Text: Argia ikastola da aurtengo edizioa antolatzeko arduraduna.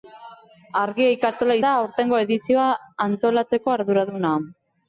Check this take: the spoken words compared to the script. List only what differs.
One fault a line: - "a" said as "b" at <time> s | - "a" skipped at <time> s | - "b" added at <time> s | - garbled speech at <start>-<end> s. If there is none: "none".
none